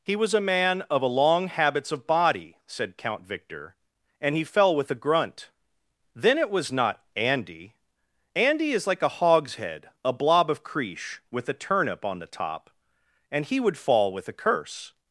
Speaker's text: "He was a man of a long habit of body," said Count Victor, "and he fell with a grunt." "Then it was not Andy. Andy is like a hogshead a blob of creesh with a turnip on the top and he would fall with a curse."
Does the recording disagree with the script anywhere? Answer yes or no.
yes